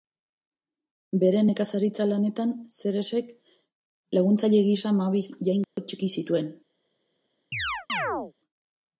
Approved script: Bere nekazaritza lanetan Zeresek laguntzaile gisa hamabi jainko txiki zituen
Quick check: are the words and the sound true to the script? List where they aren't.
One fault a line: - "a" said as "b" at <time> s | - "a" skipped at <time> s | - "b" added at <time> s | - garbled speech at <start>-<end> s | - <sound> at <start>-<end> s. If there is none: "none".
- dropout at 5.6-5.8 s
- chirp at 7.5-8.3 s